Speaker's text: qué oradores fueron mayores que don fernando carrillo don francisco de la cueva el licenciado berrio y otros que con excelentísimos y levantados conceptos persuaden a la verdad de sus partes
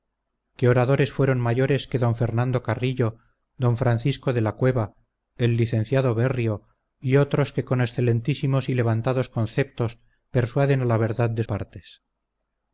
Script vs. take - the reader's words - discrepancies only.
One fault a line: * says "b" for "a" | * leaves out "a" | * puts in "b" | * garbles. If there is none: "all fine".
* leaves out "sus"